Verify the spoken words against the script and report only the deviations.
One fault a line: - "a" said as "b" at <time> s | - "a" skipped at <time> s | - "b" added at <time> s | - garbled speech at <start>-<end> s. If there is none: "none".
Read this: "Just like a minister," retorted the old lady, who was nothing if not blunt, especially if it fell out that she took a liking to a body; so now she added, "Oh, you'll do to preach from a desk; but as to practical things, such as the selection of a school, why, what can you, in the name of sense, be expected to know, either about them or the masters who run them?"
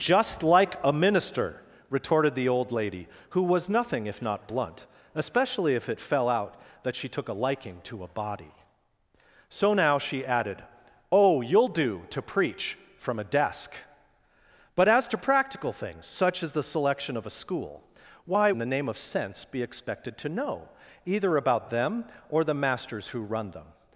- "what can you" skipped at 18.5 s